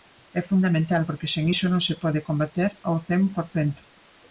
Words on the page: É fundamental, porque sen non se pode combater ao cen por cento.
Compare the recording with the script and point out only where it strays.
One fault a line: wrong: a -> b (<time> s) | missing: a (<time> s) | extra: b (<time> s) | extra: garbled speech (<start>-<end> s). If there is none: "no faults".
extra: iso (1.5 s)